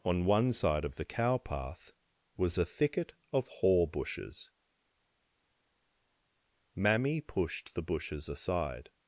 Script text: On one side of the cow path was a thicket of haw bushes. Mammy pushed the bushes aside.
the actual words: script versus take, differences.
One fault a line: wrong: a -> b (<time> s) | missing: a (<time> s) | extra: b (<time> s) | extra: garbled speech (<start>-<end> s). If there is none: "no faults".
no faults